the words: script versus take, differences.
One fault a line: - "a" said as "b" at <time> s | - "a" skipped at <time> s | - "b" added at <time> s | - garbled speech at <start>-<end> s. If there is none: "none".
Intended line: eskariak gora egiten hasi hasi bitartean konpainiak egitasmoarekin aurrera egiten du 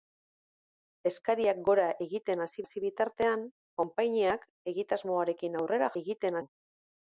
none